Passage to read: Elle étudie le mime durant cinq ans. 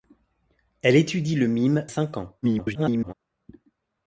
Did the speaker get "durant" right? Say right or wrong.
wrong